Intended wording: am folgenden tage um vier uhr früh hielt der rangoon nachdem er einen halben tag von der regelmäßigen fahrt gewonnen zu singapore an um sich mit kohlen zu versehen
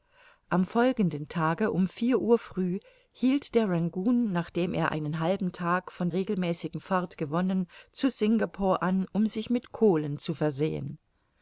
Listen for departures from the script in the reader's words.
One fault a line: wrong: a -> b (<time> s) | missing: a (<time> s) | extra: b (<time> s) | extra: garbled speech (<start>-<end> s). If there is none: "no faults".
missing: der (6.1 s)